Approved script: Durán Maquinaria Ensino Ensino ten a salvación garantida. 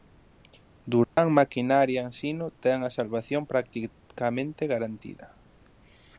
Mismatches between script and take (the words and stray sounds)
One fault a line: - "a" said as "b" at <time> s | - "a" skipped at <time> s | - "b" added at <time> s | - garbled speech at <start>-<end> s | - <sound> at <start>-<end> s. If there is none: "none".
- dropout at 1.0-1.2 s
- "Ensino" skipped at 2.5 s
- "practicamente" added at 3.5 s